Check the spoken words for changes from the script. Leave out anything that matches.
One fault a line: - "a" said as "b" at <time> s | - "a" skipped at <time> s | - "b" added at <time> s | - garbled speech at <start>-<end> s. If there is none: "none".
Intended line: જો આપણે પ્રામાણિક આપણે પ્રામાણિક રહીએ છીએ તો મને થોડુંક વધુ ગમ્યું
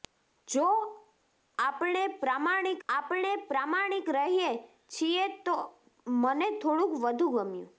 none